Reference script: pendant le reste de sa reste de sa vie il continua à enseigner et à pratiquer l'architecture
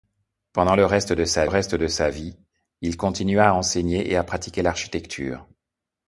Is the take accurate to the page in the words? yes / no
yes